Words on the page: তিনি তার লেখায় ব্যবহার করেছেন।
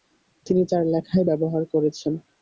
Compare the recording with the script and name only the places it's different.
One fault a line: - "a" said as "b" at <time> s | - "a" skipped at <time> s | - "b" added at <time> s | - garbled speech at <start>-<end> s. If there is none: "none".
none